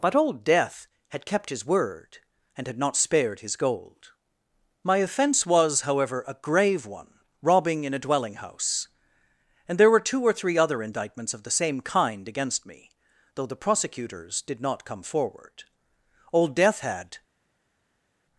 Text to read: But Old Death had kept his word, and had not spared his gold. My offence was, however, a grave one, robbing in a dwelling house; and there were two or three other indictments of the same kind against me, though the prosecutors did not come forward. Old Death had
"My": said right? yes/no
yes